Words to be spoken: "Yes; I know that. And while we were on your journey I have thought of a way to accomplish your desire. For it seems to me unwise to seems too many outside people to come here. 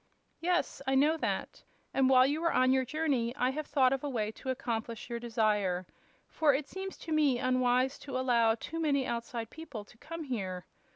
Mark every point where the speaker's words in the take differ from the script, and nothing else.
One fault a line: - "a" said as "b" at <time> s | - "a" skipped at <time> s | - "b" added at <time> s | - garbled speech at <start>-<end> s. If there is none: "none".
- "we" said as "you" at 2.2 s
- "seems" said as "allow" at 8.2 s